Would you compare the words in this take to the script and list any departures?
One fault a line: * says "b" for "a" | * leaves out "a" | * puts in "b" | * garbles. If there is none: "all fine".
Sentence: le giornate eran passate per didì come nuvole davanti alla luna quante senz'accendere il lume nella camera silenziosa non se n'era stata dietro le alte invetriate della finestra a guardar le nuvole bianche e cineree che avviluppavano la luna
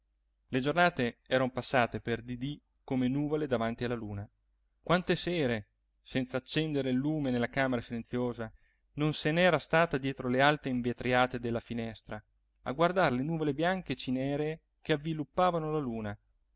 * puts in "sere"